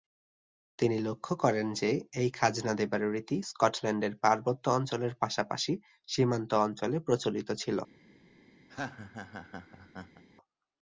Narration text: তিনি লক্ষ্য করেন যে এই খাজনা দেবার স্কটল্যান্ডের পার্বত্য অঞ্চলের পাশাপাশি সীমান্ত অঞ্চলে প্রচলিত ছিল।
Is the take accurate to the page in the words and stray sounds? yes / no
no